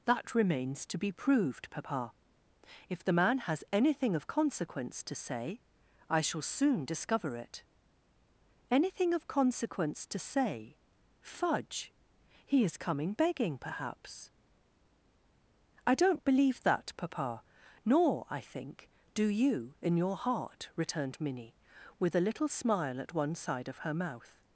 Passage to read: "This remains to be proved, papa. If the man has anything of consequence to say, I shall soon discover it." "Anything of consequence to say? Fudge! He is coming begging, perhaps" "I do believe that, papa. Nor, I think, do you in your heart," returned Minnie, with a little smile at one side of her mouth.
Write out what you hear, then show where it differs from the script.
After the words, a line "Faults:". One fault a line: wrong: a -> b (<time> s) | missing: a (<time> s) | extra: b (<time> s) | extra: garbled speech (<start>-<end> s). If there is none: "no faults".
"That remains to be proved, papa. If the man has anything of consequence to say, I shall soon discover it." "Anything of consequence to say? Fudge! He is coming begging, perhaps" "I don't believe that, papa. Nor, I think, do you in your heart," returned Minnie, with a little smile at one side of her mouth.
Faults:
wrong: This -> That (0.1 s)
wrong: do -> don't (15.9 s)